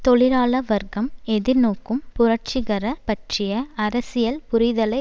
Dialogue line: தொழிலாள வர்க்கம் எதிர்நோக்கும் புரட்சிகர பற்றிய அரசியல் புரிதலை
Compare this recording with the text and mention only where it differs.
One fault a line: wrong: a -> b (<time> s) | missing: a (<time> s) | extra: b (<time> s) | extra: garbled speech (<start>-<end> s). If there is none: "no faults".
no faults